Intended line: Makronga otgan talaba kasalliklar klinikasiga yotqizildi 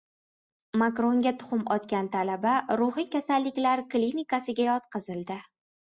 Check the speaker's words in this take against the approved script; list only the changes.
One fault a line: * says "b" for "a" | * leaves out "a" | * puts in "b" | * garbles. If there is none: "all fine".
* puts in "tuxum"
* puts in "ruhiy"